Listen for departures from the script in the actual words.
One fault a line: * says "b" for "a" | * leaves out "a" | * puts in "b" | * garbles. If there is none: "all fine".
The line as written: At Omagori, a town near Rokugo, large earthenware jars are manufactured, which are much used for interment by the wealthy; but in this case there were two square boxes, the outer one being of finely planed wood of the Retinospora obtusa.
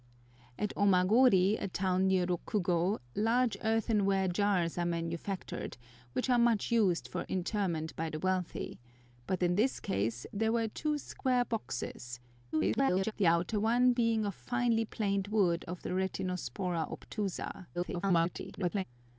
* garbles
* garbles